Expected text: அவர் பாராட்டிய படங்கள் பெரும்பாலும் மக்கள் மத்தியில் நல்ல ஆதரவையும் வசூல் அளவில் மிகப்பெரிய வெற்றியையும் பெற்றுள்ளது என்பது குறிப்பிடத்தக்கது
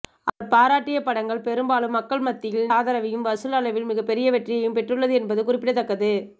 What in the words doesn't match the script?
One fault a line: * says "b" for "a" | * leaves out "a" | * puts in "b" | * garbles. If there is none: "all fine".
* leaves out "நல்ல"